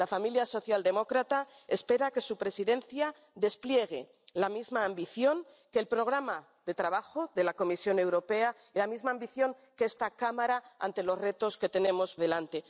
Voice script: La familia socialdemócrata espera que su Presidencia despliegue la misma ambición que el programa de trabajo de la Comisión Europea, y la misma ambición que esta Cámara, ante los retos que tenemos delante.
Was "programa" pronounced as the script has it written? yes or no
yes